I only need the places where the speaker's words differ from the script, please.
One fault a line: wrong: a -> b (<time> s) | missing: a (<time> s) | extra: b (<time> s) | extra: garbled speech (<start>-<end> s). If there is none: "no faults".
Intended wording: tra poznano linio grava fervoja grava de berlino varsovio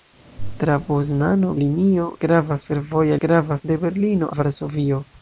no faults